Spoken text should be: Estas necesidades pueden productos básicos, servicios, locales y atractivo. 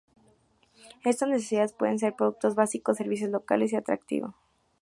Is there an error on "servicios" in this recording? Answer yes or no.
no